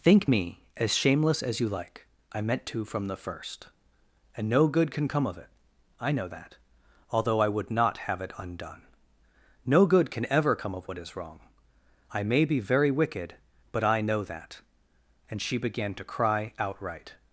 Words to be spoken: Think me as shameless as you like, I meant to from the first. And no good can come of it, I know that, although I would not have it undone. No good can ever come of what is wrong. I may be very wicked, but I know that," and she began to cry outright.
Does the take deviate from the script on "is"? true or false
false